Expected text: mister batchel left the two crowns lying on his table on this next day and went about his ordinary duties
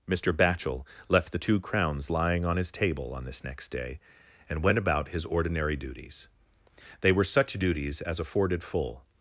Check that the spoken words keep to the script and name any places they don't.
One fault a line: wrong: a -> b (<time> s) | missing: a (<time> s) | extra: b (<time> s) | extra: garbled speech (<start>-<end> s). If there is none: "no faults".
extra: they were such duties as afforded full (7.0 s)